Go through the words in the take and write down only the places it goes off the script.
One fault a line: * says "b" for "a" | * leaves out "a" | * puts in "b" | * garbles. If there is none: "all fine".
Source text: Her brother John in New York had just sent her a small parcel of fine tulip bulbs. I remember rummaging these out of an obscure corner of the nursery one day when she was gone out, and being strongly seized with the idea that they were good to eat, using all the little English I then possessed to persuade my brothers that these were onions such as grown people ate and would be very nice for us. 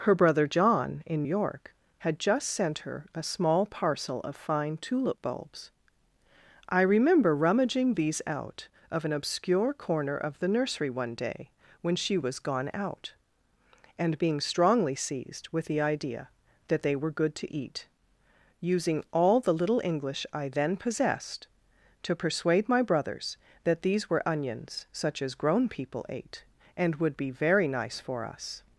* leaves out "New"